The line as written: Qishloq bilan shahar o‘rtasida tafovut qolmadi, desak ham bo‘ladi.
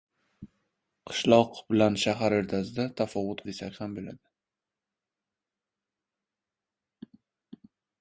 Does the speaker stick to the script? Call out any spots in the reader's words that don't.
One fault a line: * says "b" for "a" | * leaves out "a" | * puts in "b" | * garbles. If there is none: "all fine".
* leaves out "qolmadi"